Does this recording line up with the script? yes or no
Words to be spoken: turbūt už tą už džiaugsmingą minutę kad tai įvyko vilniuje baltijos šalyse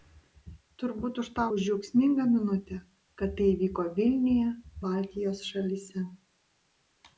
yes